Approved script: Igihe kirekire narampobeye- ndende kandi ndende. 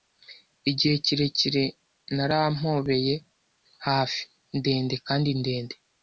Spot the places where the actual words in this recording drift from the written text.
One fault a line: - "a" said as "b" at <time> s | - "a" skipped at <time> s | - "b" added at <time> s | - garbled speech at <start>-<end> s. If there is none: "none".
- "hafi" added at 3.9 s